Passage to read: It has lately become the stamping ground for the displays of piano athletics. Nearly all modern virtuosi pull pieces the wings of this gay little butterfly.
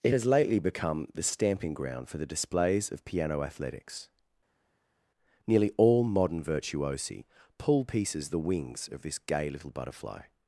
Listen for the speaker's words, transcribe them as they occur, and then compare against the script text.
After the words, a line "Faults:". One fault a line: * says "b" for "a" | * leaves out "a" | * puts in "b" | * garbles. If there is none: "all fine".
It has lately become the stamping ground for the displays of piano athletics. Nearly all modern virtuosi pull pieces the wings of this gay little butterfly.
Faults:
all fine